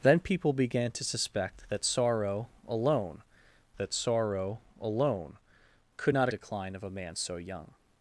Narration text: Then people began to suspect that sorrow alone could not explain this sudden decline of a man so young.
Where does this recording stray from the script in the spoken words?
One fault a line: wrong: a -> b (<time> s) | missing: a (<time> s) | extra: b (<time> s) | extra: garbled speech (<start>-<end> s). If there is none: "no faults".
wrong: could not explain this sudden -> that sorrow alone could not (3.8 s)